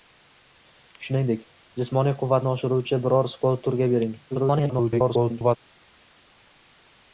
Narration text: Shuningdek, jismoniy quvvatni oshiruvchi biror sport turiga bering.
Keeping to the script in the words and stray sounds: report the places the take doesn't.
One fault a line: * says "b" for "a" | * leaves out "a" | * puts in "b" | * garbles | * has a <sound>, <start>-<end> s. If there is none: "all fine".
* garbles